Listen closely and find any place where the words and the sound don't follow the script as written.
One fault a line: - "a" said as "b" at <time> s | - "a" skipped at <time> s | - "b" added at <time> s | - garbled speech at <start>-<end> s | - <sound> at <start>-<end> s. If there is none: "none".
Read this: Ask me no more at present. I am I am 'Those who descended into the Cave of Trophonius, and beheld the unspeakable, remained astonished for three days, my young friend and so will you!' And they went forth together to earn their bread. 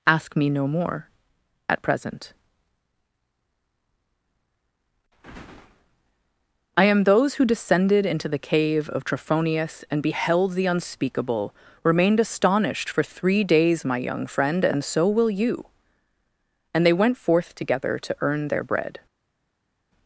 - "I am" skipped at 7.0 s